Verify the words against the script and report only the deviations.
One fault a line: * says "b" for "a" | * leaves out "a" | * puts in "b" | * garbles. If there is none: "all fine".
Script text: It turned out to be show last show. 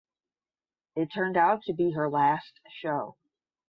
* says "her" for "show"